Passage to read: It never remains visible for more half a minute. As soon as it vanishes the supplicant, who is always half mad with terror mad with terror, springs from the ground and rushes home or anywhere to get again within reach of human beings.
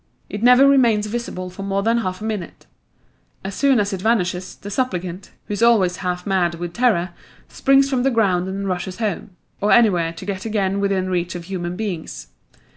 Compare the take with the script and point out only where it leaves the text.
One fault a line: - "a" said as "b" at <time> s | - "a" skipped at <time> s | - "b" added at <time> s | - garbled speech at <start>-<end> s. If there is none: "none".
- "than" added at 1.8 s
- "mad with terror" skipped at 7.1 s